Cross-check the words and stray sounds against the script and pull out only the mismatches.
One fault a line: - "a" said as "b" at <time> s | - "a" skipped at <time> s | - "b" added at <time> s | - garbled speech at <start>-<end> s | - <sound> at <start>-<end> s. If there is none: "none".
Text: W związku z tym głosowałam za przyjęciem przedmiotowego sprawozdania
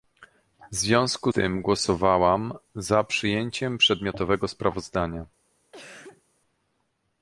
- "z" skipped at 1.3 s
- cough at 5.7-6.2 s